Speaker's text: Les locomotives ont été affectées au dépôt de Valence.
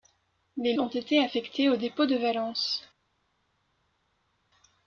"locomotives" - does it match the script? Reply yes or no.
no